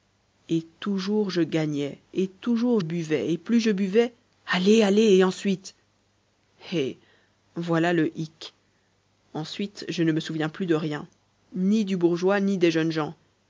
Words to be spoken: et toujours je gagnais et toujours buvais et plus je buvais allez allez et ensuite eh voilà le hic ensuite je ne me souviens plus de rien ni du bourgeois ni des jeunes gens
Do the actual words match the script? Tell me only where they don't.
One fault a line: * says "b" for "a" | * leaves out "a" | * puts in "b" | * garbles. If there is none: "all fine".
all fine